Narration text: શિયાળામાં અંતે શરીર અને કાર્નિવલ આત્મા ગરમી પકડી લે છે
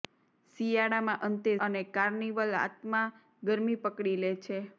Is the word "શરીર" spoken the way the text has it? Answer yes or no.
no